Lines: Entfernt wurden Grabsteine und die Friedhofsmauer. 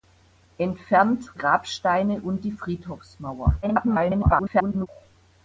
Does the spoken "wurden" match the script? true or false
false